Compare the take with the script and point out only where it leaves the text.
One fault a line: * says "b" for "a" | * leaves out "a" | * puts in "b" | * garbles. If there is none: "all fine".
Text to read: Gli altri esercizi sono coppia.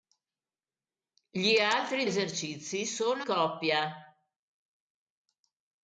all fine